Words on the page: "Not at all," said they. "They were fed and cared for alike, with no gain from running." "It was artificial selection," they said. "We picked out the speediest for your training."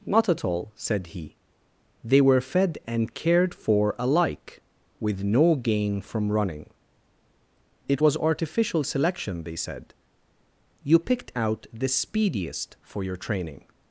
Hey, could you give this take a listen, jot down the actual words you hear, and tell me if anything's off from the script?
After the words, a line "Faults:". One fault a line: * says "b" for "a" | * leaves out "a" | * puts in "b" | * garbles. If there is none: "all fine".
"Not at all," said he. "They were fed and cared for alike, with no gain from running." "It was artificial selection," they said. "You picked out the speediest for your training."
Faults:
* says "he" for "they"
* says "You" for "We"